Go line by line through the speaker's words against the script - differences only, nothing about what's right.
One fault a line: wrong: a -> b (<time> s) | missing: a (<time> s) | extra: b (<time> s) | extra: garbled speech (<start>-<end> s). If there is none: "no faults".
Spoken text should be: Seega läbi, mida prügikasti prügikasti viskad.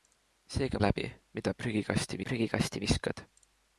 no faults